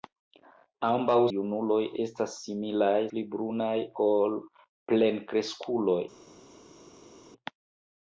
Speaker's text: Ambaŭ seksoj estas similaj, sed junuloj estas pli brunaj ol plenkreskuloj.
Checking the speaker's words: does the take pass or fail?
fail